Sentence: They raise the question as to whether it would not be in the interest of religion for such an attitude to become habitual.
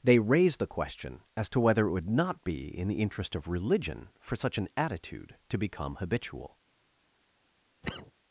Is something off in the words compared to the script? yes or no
no